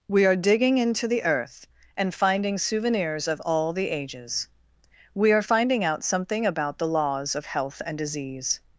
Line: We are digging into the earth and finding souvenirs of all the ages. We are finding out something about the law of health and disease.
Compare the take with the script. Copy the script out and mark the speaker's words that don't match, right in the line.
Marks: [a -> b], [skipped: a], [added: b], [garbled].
We are digging into the earth and finding souvenirs of all the ages. We are finding out something about the [law -> laws] of health and disease.